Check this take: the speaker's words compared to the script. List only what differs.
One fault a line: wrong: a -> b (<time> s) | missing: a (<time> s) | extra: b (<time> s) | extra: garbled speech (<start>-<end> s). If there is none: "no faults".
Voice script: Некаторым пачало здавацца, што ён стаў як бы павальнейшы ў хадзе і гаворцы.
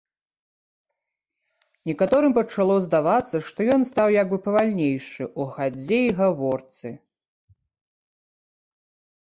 no faults